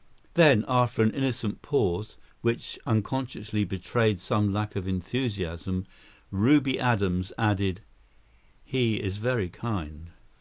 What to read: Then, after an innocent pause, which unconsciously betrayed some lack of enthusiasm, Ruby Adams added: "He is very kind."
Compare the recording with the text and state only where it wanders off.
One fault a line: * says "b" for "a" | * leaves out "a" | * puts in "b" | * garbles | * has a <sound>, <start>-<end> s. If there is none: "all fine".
all fine